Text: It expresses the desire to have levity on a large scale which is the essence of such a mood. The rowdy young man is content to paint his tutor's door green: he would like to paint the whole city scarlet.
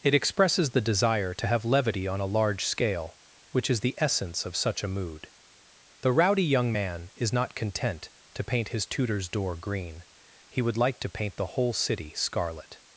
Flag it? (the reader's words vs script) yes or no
yes